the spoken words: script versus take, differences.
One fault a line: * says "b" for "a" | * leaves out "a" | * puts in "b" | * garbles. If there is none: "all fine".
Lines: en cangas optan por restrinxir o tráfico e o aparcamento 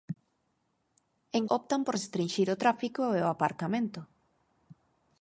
* leaves out "cangas"